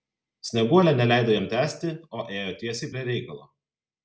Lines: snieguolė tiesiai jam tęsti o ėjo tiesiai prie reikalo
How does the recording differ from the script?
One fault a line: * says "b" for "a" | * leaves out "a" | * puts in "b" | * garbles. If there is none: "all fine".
* says "neleido" for "tiesiai"